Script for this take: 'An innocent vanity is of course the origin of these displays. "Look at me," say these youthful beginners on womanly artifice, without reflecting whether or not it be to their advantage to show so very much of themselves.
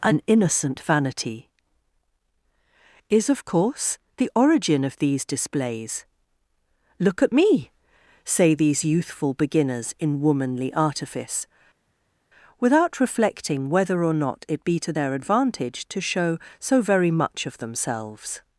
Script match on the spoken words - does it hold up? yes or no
no